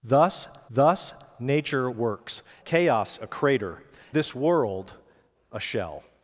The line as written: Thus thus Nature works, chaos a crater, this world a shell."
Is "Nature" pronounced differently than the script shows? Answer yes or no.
no